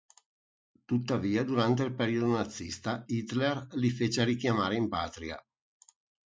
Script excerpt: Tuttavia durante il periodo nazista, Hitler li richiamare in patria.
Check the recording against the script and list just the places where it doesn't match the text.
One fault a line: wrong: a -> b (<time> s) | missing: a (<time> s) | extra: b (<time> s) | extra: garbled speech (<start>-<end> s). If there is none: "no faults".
extra: fece (3.9 s)